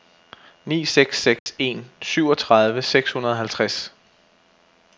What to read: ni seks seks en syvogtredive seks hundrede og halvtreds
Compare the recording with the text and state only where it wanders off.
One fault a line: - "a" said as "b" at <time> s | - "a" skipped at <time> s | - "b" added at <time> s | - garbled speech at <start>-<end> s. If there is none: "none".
none